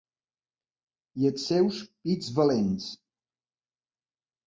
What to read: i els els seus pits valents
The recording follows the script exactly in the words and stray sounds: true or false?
false